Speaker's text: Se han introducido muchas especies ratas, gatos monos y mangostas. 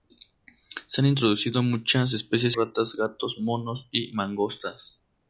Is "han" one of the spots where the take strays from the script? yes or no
no